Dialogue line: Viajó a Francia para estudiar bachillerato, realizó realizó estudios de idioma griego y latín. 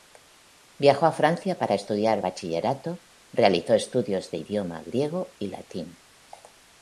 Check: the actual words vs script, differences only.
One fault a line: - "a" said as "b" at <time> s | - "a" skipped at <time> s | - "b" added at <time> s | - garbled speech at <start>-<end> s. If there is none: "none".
- "realizó" skipped at 3.7 s